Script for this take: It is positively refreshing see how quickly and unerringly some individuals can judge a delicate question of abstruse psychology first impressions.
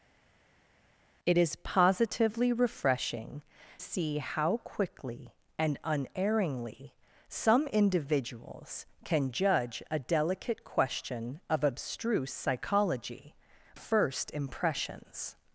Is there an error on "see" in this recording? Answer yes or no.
no